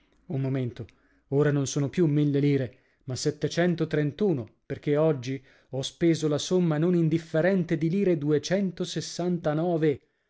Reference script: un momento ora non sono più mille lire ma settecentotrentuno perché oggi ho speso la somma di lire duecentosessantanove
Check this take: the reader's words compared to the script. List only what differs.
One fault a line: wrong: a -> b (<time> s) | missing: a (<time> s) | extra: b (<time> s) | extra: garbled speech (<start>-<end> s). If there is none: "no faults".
extra: non indifferente (6.8 s)